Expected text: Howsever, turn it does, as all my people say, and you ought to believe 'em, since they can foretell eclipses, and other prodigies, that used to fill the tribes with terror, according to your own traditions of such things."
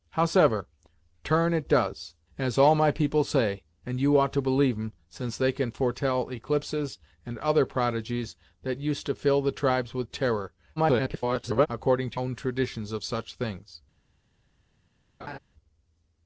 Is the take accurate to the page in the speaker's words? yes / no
no